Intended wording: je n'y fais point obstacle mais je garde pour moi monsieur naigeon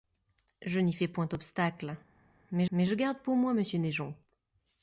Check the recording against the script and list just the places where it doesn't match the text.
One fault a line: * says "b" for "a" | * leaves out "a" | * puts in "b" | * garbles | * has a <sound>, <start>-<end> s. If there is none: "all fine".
* puts in "mais"